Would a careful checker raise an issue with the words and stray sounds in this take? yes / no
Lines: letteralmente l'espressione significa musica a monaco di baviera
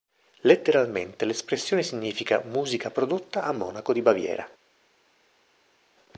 yes